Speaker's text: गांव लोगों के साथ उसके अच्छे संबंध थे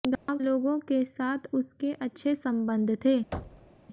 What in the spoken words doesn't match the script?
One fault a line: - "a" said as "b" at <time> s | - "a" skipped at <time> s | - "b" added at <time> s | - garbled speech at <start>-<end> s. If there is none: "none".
none